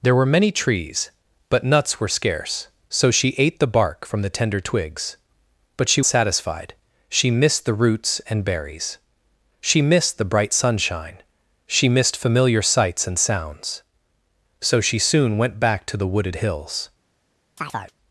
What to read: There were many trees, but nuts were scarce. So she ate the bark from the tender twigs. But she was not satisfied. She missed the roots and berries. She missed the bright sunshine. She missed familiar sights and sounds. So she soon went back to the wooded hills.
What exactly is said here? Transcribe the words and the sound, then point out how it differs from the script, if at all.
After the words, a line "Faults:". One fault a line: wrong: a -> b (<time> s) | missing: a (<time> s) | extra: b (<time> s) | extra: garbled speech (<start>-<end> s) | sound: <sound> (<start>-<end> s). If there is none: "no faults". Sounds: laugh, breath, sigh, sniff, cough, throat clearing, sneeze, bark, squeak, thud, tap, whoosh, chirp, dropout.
There were many trees, but nuts were scarce. So she ate the bark from the tender twigs. But she satisfied. She missed the roots and berries. She missed the bright sunshine. She missed familiar sights and sounds. So she soon went back to the wooded hills.
Faults:
missing: was not (6.0 s)
sound: chirp (17.6-18.0 s)